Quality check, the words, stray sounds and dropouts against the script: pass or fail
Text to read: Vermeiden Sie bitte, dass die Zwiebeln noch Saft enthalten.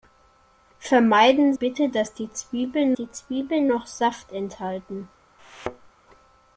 fail